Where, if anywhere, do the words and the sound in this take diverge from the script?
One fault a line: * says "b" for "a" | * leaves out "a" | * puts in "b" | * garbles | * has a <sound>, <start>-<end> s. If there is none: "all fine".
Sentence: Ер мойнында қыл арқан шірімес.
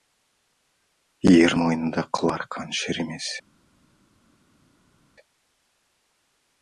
all fine